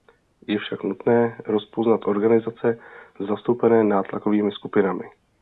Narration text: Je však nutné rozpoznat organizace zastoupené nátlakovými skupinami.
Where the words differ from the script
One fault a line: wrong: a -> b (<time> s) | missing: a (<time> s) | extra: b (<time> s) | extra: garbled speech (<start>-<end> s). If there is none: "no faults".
no faults